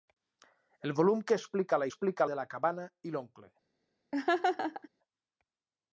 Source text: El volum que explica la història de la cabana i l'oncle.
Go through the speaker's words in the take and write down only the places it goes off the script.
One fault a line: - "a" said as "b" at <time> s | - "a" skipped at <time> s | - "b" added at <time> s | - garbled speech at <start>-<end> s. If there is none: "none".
- "història" said as "explica" at 1.9 s